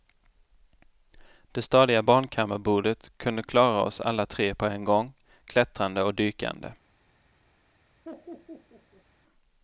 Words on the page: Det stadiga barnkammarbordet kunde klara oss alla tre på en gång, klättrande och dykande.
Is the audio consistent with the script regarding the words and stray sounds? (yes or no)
no